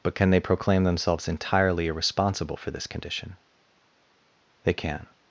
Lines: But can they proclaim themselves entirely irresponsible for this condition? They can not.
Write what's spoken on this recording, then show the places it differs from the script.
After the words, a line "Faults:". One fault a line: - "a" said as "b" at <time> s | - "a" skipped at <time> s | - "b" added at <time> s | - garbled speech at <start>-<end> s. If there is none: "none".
But can they proclaim themselves entirely irresponsible for this condition? They can.
Faults:
- "not" skipped at 5.1 s